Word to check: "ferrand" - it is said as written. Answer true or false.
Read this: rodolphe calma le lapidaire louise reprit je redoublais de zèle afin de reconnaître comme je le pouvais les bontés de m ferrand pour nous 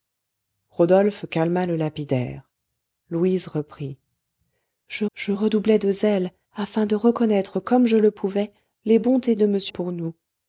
false